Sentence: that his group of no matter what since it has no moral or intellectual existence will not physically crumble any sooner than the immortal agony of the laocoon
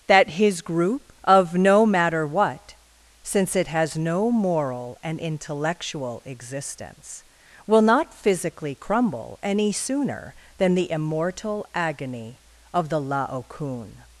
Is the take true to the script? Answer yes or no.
no